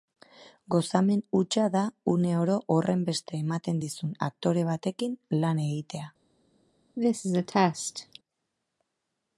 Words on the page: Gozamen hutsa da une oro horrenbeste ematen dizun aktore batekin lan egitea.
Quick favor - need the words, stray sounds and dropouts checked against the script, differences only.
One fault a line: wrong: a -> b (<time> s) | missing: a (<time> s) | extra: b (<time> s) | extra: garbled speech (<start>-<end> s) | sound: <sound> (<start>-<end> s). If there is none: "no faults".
sound: cough (7.0-8.2 s)